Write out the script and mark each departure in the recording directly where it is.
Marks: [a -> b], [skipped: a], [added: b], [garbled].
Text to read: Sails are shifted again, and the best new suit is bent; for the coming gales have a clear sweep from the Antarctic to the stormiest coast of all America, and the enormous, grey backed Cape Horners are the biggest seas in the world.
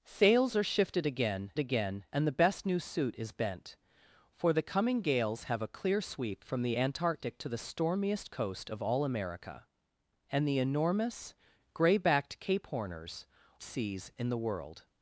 Sails are shifted again, [added: again] and the best new suit is bent; for the coming gales have a clear sweep from the Antarctic to the stormiest coast of all America, and the enormous, grey backed Cape Horners [skipped: are the biggest] seas in the world.